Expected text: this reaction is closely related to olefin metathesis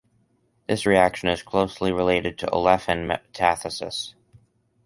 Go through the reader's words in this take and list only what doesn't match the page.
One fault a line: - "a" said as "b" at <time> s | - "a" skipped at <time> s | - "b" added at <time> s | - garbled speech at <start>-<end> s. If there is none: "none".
none